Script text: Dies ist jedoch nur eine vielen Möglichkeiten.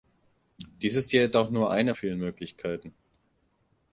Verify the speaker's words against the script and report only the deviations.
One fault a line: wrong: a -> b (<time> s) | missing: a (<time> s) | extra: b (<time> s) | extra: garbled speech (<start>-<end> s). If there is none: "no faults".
no faults